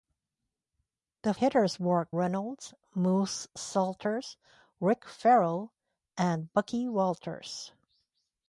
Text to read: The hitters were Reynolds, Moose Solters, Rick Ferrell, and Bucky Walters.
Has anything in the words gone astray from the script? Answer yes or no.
no